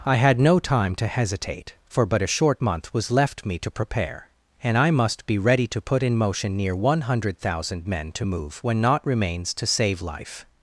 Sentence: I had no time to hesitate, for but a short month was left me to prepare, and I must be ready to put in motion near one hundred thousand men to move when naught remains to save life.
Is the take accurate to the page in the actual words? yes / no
yes